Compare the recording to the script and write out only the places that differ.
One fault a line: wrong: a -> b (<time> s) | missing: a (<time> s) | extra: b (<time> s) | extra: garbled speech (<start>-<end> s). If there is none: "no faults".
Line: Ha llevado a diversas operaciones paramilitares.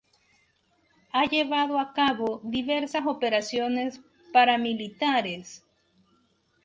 extra: cabo (1.9 s)